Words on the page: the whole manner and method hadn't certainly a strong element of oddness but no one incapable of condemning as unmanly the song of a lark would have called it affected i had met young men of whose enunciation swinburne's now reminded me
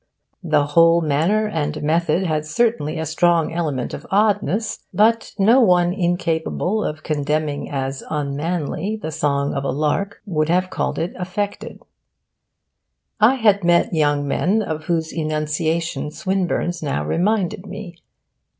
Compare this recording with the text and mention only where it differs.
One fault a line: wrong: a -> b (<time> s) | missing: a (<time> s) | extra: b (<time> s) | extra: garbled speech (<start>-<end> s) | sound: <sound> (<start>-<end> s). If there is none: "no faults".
wrong: hadn't -> had (2.2 s)